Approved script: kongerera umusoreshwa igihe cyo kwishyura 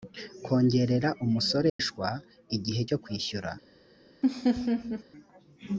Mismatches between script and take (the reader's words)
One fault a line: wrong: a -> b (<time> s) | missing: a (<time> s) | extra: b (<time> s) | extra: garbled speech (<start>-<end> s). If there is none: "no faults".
no faults